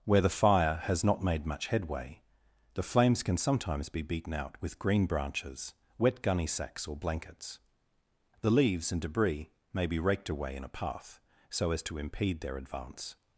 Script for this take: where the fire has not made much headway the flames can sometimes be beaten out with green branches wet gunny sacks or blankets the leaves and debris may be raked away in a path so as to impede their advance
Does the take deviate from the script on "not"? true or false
false